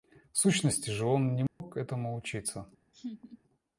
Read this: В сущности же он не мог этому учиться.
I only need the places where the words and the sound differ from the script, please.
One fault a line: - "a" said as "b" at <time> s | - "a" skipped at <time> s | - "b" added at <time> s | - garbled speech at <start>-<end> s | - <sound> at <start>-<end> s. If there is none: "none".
- dropout at 1.5-1.6 s
- laugh at 2.9-3.4 s